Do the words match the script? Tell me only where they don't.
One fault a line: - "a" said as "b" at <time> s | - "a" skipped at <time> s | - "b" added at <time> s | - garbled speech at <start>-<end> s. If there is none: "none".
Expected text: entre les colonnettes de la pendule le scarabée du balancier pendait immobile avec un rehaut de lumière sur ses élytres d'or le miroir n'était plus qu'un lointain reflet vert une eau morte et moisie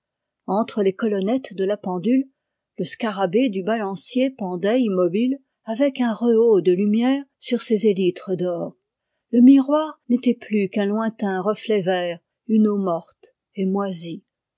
none